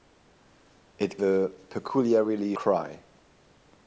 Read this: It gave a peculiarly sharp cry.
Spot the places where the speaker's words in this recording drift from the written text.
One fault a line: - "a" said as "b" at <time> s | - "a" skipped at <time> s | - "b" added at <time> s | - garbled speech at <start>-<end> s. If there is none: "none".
- "gave" skipped at 1.2 s
- "sharp" skipped at 2.5 s